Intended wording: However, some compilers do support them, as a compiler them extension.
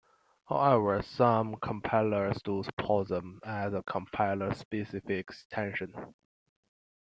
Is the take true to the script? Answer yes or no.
no